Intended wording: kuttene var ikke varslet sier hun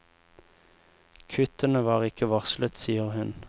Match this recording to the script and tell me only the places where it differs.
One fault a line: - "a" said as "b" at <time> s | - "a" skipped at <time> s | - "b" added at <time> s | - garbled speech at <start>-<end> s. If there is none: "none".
none